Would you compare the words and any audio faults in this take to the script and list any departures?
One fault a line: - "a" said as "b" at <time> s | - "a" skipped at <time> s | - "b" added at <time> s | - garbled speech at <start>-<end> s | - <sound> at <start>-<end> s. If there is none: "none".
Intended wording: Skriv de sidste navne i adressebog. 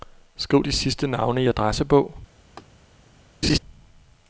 - laugh at 2.6-2.6 s
- laugh at 3.4-3.6 s